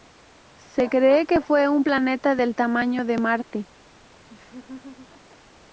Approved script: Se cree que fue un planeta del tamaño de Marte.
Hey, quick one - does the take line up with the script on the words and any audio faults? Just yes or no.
no